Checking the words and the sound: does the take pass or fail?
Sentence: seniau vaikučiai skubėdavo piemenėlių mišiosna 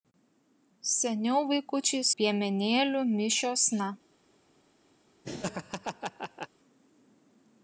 fail